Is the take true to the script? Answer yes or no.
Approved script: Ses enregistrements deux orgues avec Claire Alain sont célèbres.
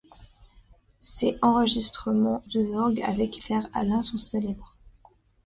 yes